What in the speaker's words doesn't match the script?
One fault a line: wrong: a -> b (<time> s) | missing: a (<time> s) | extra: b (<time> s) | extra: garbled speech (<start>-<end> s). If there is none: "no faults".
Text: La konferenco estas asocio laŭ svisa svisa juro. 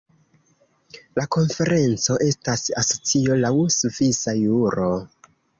missing: svisa (4.4 s)